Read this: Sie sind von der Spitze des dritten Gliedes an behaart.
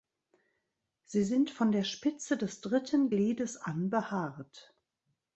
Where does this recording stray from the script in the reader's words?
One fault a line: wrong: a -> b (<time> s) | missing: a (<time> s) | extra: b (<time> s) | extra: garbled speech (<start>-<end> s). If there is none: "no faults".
no faults